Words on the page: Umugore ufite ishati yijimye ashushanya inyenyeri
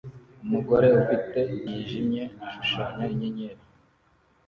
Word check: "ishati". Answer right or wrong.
wrong